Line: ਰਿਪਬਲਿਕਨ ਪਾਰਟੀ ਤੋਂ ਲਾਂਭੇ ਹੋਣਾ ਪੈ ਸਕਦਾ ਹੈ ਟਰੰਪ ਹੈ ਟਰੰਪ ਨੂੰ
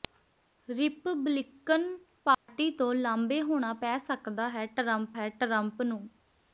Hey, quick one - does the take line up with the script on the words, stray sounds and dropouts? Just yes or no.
no